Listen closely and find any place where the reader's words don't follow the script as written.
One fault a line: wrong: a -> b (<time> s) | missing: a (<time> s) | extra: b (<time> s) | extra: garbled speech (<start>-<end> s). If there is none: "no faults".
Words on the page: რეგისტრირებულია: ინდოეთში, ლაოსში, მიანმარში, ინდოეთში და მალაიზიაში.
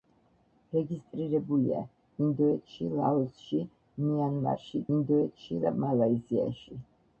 no faults